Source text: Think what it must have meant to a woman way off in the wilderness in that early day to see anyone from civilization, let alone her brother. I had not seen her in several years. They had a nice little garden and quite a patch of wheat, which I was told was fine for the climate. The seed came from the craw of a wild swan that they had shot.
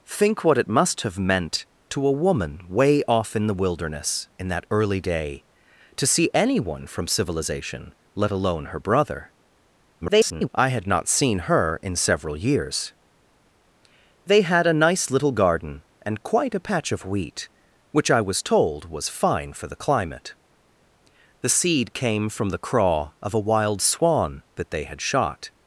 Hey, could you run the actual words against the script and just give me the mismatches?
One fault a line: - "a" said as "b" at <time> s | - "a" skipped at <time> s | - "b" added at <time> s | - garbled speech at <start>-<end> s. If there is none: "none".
- garbled speech at 10.0-10.5 s